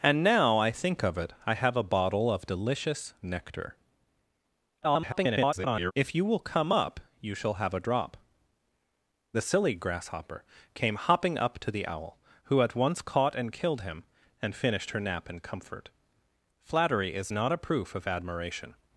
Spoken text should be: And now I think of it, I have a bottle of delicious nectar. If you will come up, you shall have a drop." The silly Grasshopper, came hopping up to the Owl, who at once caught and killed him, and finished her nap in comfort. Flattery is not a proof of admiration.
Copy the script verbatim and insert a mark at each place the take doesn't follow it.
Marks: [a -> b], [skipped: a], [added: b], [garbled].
And now I think of it, I have a bottle of delicious nectar. [garbled] If you will come up, you shall have a drop." The silly Grasshopper, came hopping up to the Owl, who at once caught and killed him, and finished her nap in comfort. Flattery is not a proof of admiration.